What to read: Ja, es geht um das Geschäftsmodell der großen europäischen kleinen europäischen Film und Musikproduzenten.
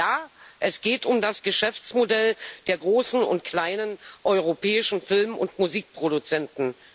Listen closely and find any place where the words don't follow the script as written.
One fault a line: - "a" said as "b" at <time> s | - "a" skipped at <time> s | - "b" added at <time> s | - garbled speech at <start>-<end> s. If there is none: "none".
- "europäischen" said as "und" at 3.2 s